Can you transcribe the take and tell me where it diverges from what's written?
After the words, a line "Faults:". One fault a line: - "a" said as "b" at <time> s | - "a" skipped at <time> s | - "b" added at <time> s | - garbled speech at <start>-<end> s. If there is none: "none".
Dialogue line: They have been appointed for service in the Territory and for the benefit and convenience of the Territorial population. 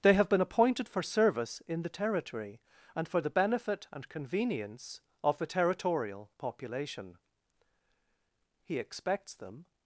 They have been appointed for service in the Territory and for the benefit and convenience of the Territorial population. He expects them
Faults:
- "He expects them" added at 8.6 s